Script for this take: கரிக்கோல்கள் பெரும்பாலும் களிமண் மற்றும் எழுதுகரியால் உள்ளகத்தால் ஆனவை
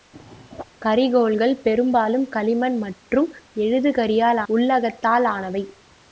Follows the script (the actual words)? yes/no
yes